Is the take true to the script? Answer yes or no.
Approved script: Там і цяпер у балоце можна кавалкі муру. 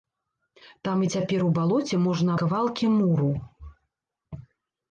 yes